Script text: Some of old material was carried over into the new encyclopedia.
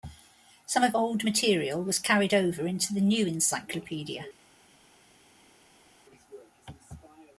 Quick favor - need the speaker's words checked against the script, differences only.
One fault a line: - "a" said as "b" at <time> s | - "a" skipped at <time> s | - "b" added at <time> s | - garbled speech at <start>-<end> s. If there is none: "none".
none